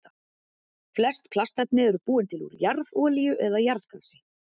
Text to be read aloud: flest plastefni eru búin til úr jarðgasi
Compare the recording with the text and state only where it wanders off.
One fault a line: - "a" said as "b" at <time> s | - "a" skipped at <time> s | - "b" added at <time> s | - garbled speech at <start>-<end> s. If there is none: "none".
- "jarðolíu eða" added at 2.6 s